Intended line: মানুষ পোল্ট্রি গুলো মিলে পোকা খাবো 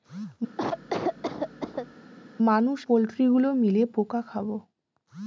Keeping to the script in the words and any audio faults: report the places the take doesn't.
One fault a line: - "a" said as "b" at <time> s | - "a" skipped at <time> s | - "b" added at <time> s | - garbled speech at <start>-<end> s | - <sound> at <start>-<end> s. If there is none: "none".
- cough at 0.6-1.9 s